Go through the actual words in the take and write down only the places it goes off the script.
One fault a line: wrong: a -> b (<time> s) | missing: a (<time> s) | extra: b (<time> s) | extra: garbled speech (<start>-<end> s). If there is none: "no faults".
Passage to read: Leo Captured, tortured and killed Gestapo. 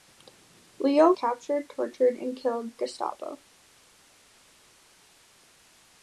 no faults